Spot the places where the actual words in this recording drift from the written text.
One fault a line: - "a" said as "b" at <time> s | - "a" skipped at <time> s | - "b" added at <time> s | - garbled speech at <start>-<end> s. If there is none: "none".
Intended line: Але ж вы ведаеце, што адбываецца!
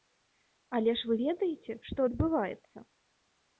none